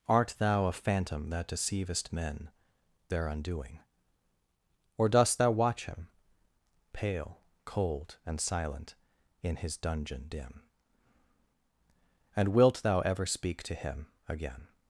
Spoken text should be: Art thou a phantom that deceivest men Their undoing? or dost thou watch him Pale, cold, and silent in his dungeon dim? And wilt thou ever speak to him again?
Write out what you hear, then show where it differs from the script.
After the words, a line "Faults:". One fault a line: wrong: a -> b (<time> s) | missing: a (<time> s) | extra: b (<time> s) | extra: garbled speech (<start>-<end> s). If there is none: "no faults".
Art thou a phantom that deceivest men Their undoing? or dost thou watch him Pale, cold, and silent in his dungeon dim? And wilt thou ever speak to him again?
Faults:
no faults